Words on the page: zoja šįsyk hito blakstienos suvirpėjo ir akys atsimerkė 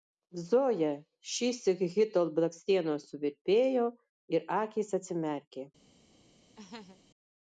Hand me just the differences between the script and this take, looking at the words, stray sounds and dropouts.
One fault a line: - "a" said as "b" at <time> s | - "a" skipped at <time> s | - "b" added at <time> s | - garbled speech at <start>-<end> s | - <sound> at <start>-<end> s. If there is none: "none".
- laugh at 6.6-7.0 s